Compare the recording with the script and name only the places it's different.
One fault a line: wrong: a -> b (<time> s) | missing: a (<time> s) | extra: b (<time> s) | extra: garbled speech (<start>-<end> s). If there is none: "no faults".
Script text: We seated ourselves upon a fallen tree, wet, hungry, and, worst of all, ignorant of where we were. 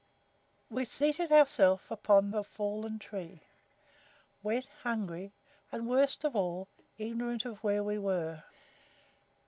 no faults